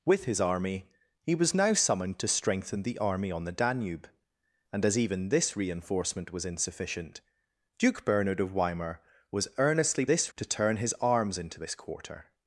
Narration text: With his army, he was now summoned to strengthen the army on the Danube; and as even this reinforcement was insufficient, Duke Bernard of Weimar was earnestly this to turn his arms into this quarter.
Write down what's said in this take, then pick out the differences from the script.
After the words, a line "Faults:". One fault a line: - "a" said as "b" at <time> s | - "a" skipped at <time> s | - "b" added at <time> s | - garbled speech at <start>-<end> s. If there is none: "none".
With his army, he was now summoned to strengthen the army on the Danube; and as even this reinforcement was insufficient, Duke Bernard of Weimar was earnestly this to turn his arms into this quarter.
Faults:
none